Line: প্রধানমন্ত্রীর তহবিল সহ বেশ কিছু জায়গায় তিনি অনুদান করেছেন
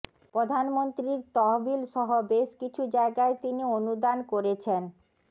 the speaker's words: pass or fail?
pass